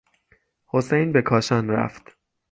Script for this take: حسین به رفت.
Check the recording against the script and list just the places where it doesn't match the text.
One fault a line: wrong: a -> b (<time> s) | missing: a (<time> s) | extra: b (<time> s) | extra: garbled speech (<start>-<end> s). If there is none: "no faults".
extra: کاشان (1.2 s)